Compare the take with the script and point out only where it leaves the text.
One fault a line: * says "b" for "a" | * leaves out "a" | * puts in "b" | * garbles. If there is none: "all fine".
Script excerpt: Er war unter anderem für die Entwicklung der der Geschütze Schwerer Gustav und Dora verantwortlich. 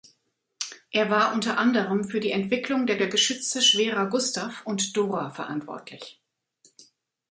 all fine